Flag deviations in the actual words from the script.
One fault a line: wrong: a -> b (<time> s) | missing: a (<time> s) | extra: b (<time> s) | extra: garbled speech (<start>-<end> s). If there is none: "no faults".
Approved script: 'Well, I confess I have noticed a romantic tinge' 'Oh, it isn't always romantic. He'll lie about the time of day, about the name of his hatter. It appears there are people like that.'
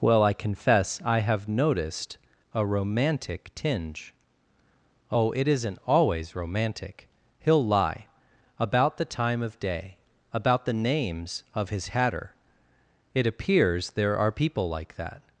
wrong: name -> names (10.7 s)